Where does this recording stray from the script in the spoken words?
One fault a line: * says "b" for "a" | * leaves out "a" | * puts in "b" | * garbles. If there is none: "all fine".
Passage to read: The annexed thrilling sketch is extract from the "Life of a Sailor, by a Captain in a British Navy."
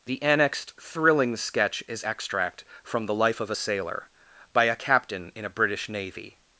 all fine